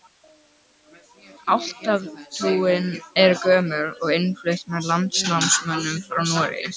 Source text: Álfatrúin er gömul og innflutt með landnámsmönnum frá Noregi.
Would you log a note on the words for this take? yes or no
no